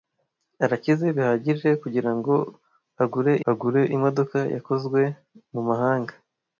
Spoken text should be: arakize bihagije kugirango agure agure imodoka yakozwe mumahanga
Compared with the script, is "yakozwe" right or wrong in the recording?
right